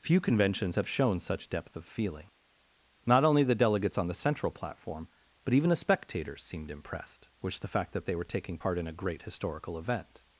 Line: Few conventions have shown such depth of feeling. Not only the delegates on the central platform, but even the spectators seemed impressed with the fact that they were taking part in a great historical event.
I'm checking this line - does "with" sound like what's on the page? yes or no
no